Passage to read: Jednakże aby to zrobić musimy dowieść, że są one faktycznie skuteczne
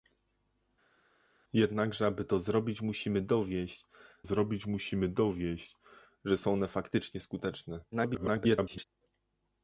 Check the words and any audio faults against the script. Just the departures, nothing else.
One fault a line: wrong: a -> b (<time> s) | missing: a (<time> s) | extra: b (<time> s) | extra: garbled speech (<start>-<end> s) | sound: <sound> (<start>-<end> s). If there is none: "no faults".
extra: zrobić musimy dowieść (4.2 s)
extra: garbled speech (7.9-8.9 s)